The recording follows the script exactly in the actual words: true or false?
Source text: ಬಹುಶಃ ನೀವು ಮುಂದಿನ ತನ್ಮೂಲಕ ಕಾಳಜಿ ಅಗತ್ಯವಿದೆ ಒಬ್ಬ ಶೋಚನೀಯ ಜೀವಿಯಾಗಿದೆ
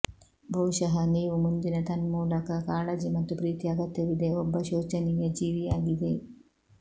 false